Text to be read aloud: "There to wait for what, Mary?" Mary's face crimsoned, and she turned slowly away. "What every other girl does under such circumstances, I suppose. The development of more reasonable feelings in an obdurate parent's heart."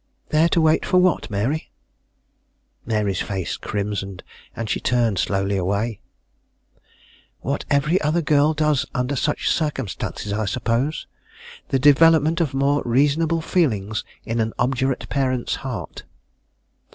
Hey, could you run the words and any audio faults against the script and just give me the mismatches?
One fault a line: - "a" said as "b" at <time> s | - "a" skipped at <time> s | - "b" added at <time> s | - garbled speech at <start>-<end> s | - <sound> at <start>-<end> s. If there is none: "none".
none